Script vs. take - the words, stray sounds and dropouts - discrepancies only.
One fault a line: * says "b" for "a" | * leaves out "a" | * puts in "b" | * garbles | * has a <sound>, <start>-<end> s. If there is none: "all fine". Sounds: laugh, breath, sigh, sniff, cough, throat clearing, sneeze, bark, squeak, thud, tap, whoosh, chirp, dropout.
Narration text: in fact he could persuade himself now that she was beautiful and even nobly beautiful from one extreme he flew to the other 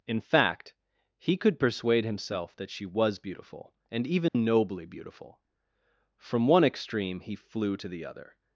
* leaves out "now"
* has a dropout, 4.3-4.3 s